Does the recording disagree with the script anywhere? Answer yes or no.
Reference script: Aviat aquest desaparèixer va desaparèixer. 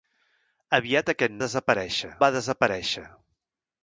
no